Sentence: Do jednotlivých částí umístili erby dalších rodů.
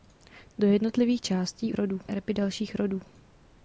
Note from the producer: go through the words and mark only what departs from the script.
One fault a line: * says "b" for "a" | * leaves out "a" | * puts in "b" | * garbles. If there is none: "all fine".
* says "rodů" for "umístili"